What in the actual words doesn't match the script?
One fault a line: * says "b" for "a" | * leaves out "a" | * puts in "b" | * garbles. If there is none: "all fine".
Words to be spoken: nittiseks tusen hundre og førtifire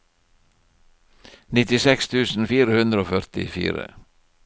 * puts in "fire"